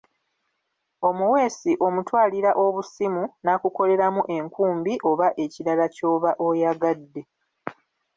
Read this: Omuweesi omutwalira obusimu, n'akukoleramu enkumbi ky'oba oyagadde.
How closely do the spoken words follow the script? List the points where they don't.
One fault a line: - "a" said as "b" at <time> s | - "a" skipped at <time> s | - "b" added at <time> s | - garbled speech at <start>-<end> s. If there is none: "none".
- "oba ekirala" added at 5.1 s